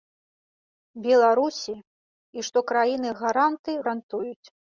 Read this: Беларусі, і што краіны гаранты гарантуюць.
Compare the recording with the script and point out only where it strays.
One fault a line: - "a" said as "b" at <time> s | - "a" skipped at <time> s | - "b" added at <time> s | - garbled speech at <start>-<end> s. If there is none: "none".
none